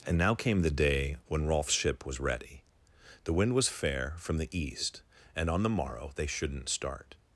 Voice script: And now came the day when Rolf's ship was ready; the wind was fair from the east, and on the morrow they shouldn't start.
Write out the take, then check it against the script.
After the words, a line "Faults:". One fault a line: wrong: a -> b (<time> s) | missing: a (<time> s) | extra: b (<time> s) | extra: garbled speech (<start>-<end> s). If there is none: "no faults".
And now came the day when Rolf's ship was ready; the wind was fair from the east, and on the morrow they shouldn't start.
Faults:
no faults